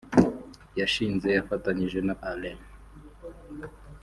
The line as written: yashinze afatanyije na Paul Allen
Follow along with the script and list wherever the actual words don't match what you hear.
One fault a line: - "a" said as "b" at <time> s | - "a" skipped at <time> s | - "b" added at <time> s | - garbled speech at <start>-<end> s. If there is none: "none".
- "Paul" skipped at 2.1 s